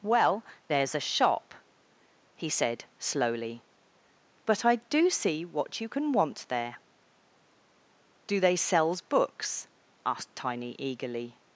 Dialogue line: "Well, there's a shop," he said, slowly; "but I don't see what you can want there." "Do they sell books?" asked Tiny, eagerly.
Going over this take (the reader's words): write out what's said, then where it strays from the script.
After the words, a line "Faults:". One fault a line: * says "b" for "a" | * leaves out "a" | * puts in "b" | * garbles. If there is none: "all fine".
"Well, there's a shop," he said, slowly; "but I do see what you can want there." "Do they sells books?" asked Tiny, eagerly.
Faults:
* says "do" for "don't"
* says "sells" for "sell"